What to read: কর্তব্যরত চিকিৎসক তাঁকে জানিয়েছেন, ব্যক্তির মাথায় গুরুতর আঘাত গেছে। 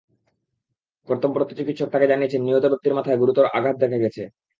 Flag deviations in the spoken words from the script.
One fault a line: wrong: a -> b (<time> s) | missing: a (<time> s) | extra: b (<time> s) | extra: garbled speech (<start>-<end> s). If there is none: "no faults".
extra: নিহত (2.4 s)
extra: দেখা (3.8 s)